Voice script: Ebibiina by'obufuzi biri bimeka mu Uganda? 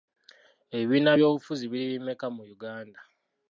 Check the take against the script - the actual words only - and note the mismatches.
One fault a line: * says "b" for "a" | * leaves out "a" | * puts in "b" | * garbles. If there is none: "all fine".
all fine